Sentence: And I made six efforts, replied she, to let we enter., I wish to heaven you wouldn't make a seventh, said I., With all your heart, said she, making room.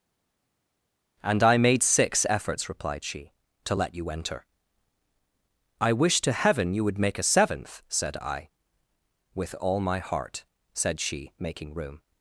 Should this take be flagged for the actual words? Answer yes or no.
yes